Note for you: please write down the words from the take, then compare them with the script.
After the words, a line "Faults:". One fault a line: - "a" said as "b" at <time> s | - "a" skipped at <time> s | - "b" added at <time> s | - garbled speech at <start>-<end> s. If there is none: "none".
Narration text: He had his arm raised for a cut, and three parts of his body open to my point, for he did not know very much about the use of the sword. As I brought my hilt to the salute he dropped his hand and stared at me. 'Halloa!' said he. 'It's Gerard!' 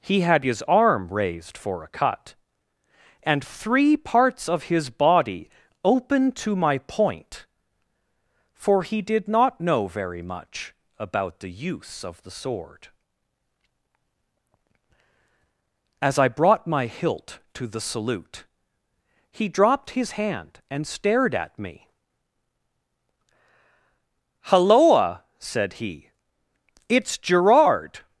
He had his arm raised for a cut, and three parts of his body open to my point, for he did not know very much about the use of the sword. As I brought my hilt to the salute he dropped his hand and stared at me. 'Halloa!' said he. 'It's Gerard!'
Faults:
none